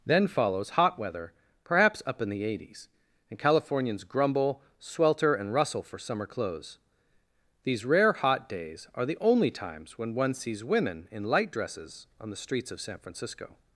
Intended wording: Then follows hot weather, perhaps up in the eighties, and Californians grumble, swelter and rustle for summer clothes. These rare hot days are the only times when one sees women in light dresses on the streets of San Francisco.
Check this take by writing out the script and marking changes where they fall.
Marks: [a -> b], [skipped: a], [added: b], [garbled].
Then follows hot weather, perhaps up in the eighties, and Californians grumble, swelter and rustle for summer clothes. These rare hot days are the only times when one sees women in light dresses on the streets of San Francisco.